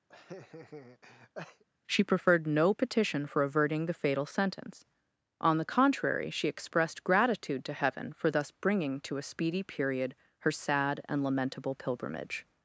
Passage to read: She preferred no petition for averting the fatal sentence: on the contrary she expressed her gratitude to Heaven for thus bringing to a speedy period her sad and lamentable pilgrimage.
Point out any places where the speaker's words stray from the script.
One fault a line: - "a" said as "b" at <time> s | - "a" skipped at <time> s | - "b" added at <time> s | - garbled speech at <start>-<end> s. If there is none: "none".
- "her" skipped at 7.0 s